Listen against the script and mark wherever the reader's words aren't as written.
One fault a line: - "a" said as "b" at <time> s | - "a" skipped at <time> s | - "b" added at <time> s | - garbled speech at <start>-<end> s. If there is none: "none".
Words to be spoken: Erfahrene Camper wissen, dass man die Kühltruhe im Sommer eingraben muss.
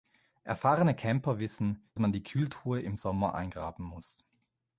- "dass" skipped at 1.9 s